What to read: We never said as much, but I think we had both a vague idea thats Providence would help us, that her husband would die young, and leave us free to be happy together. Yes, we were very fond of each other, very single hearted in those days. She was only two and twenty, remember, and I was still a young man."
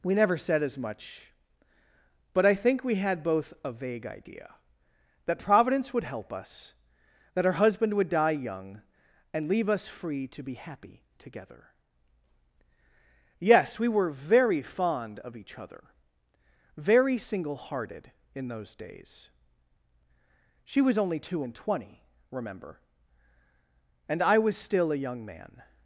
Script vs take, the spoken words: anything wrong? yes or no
yes